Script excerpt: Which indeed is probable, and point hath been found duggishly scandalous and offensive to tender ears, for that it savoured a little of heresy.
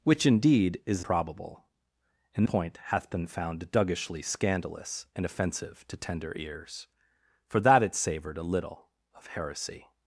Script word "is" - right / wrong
right